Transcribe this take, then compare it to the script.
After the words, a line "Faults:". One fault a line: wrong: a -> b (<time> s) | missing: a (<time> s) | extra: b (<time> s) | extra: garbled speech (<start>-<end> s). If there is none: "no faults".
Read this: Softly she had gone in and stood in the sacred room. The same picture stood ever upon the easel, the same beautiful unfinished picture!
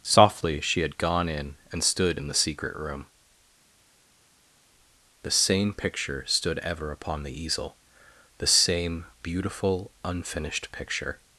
Softly she had gone in and stood in the secret room. The same picture stood ever upon the easel, the same beautiful unfinished picture!
Faults:
wrong: sacred -> secret (2.3 s)